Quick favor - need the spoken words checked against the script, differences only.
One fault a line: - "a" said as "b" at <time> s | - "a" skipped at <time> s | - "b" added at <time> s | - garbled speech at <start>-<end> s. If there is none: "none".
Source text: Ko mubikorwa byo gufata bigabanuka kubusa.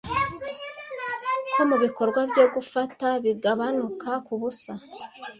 none